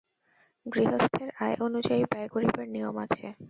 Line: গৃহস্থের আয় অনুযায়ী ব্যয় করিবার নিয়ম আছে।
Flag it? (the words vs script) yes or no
no